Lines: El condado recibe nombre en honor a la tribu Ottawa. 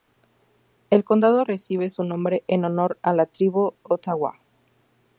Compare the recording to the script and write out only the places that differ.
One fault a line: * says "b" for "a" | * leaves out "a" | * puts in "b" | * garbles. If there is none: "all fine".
* puts in "su"